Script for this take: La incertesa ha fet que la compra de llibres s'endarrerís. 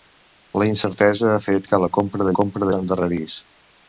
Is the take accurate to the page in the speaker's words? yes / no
no